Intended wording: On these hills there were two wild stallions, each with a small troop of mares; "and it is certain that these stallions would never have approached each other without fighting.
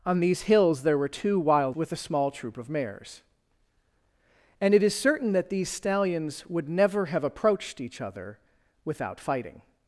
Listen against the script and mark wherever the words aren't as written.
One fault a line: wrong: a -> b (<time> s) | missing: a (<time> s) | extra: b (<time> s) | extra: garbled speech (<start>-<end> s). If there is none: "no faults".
missing: stallions each (1.8 s)